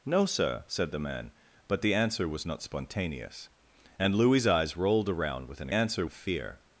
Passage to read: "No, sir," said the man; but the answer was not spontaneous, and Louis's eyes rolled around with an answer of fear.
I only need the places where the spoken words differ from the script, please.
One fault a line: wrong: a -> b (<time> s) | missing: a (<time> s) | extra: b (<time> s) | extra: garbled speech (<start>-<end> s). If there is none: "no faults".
no faults